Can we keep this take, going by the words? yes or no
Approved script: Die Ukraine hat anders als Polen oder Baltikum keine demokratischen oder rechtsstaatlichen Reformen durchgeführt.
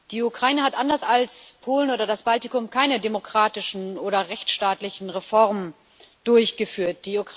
no